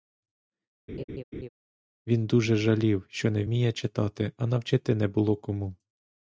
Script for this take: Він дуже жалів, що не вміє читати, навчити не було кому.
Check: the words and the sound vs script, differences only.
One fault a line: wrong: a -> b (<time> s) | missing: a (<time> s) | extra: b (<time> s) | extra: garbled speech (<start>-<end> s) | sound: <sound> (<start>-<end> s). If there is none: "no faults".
sound: laugh (0.9-1.5 s)
extra: а (4.4 s)